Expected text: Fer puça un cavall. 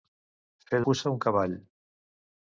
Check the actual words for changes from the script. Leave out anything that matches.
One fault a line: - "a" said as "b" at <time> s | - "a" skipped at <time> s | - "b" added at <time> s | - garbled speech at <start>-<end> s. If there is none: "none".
none